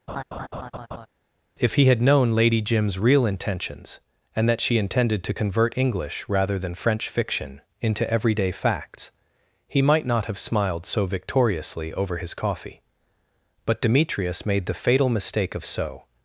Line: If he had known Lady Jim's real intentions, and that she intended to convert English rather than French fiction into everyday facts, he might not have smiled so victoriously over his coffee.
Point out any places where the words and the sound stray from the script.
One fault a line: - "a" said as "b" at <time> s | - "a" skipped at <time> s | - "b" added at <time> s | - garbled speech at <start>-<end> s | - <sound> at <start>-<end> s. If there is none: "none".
- laugh at 0.1-1.1 s
- "But Demetrius made the fatal mistake of so" added at 13.6 s